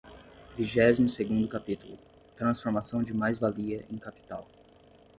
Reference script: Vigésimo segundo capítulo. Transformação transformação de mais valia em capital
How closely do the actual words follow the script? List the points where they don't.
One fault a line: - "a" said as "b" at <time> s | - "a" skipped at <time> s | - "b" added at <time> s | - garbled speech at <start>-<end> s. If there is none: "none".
- "transformação" skipped at 3.0 s